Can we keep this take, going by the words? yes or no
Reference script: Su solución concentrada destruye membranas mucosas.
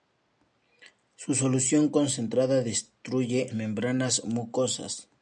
yes